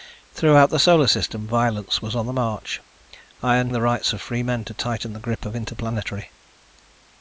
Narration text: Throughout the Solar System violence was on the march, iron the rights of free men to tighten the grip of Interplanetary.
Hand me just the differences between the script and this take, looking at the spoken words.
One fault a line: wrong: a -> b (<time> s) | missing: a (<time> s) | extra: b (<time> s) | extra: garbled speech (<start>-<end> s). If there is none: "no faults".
no faults